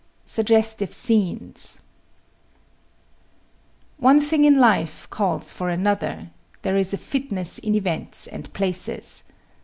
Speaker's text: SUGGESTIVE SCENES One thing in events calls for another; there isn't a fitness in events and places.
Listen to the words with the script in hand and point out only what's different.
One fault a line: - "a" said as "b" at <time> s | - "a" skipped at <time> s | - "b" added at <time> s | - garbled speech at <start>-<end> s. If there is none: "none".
- "events" said as "life" at 4.6 s
- "isn't" said as "is" at 6.8 s